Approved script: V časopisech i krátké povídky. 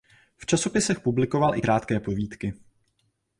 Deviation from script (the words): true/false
true